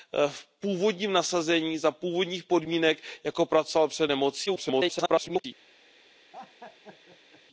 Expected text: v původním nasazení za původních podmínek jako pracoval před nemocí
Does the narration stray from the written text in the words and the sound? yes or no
yes